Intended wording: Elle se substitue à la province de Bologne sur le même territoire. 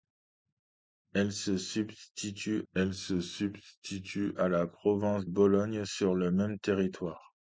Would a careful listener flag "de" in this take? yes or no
yes